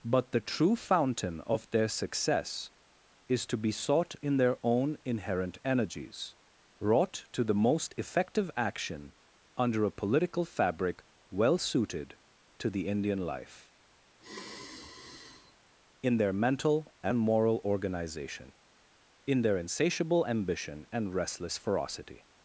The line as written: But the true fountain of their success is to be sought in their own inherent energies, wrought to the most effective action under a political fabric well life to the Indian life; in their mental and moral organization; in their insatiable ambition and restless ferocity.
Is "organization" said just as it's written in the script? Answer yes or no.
yes